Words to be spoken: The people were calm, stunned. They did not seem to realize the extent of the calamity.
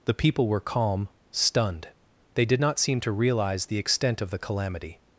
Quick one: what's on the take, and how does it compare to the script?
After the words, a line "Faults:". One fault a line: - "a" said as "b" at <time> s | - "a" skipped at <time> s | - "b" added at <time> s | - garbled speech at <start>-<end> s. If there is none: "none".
The people were calm, stunned. They did not seem to realize the extent of the calamity.
Faults:
none